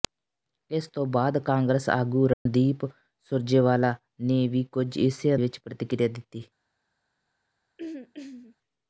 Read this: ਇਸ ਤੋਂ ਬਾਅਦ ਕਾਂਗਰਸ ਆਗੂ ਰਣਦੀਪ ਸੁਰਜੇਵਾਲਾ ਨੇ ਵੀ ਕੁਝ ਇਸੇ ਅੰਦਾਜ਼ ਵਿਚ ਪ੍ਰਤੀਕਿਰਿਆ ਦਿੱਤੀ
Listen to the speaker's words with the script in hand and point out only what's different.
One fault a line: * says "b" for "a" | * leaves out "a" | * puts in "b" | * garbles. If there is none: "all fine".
* leaves out "ਅੰਦਾਜ਼"